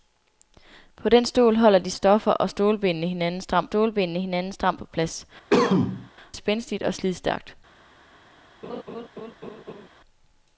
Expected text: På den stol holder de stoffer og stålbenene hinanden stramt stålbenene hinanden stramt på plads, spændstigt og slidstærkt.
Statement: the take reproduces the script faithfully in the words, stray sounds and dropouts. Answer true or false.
false